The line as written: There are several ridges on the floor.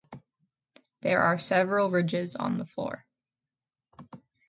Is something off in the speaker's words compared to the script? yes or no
no